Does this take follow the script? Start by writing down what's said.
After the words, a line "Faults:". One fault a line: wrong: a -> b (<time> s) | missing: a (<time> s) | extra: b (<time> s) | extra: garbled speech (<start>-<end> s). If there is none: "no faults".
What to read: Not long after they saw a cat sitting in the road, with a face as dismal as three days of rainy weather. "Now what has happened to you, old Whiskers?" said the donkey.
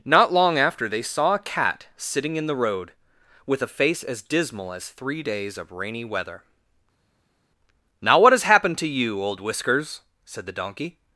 Not long after they saw a cat sitting in the road, with a face as dismal as three days of rainy weather. "Now what has happened to you, old Whiskers?" said the donkey.
Faults:
no faults